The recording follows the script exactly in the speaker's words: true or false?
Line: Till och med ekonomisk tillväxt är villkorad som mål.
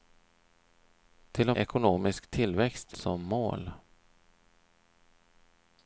false